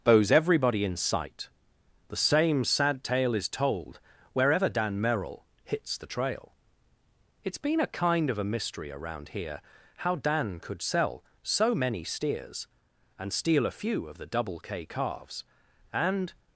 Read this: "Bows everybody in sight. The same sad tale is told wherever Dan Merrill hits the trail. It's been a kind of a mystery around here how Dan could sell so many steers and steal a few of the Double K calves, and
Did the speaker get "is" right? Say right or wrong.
right